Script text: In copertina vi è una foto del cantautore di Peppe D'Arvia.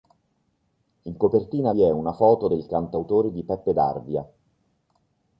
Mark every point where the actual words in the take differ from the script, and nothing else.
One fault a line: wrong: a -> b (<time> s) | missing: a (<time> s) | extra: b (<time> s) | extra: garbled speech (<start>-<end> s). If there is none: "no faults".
no faults